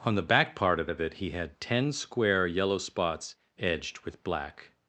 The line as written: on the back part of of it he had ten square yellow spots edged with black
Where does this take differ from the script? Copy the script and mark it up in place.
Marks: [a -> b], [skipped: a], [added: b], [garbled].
on the back part of of it he had ten square yellow spots edged with black